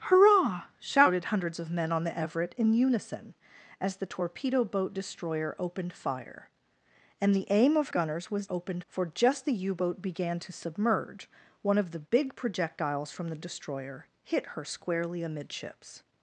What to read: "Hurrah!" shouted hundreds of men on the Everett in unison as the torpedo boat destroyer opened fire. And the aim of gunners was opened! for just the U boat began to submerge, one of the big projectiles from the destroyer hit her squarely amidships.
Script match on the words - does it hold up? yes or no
yes